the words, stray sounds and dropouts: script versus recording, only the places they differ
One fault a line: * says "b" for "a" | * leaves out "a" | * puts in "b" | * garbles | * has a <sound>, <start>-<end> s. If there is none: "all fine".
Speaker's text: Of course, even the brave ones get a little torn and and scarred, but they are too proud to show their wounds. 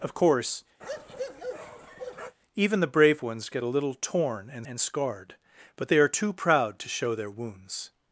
* has a bark, 0.8-2.4 s